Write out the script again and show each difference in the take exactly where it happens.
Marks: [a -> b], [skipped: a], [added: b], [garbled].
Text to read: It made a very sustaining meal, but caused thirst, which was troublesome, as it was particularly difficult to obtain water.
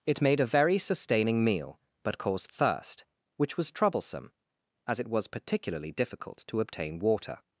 It made a very sustaining meal, but caused thirst, which was troublesome, as it was particularly difficult to obtain water.